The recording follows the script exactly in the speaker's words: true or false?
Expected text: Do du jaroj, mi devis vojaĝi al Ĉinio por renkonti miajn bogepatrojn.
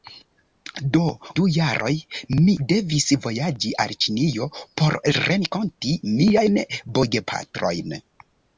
true